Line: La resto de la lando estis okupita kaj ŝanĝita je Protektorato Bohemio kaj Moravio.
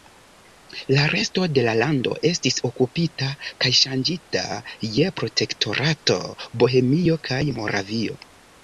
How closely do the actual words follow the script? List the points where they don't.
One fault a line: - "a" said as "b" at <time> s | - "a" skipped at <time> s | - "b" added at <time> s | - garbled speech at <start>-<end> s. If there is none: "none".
none